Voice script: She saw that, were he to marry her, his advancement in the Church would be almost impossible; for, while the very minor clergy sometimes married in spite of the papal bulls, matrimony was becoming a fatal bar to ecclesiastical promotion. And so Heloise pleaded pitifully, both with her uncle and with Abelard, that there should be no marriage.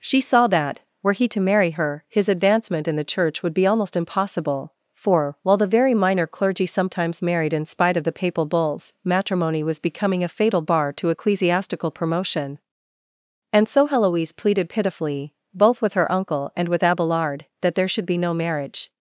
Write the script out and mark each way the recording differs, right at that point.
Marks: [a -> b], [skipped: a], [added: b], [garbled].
She saw that, were he to marry her, his advancement in the Church would be almost impossible; for, while the very minor clergy sometimes married in spite of the papal bulls, matrimony was becoming a fatal bar to ecclesiastical promotion. And so Heloise pleaded pitifully, both with her uncle and with Abelard, that there should be no marriage.